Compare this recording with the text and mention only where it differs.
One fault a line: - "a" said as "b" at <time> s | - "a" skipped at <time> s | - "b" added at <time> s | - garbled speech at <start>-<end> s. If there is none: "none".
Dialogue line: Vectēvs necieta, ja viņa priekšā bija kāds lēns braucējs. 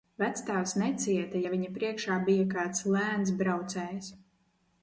none